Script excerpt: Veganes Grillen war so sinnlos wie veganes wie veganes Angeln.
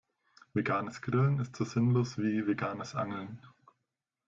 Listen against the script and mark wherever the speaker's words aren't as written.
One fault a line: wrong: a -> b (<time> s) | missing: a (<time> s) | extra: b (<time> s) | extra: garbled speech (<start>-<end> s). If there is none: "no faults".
wrong: war -> ist (1.4 s)
missing: wie veganes (3.0 s)